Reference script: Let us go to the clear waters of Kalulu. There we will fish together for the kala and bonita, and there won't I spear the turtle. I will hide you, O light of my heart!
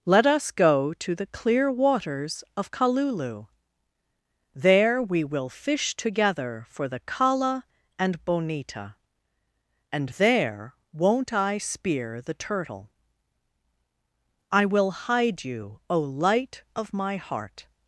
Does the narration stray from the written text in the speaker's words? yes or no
no